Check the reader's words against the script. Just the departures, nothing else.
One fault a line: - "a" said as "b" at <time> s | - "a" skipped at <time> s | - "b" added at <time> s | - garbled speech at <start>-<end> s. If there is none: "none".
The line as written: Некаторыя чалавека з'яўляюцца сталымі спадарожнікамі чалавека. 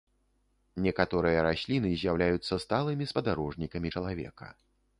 - "чалавека" said as "расліны" at 1.5 s